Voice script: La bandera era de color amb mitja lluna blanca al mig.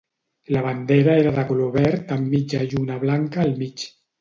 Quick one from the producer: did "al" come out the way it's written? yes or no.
yes